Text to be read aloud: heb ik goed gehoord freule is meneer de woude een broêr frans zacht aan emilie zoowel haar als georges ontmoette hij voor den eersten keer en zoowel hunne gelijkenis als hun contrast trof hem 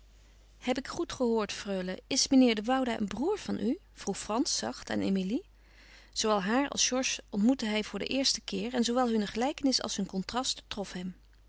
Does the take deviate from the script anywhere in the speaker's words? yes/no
yes